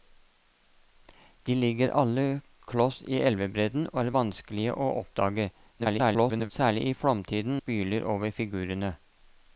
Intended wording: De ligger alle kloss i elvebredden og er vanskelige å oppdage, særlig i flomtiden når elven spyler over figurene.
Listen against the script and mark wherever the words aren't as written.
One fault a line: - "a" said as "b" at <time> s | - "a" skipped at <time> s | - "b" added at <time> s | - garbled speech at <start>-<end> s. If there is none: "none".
- garbled speech at 5.8-6.5 s
- "når elven" skipped at 7.6 s